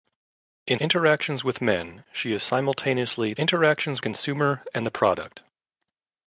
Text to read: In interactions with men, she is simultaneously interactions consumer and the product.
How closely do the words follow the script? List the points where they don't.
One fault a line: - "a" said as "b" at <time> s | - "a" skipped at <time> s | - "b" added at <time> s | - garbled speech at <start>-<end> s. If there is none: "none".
none